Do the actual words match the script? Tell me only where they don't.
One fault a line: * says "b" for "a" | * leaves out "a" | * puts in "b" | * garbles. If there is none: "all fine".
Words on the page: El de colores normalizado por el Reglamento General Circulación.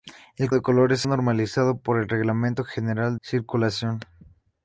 all fine